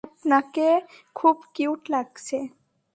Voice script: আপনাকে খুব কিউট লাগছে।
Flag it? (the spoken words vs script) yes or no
no